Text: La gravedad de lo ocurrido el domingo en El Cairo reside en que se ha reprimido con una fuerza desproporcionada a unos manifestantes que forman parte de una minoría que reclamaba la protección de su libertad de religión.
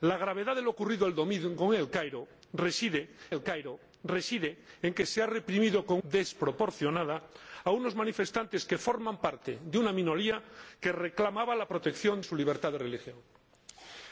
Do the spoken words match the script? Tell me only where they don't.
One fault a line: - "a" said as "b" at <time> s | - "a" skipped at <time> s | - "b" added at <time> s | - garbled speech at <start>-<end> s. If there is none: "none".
- "El Cairo reside" added at 3.3 s
- "una fuerza" skipped at 6.0 s
- "de" skipped at 12.2 s